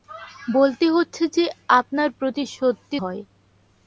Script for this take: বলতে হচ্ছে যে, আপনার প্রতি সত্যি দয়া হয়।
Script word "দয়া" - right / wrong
wrong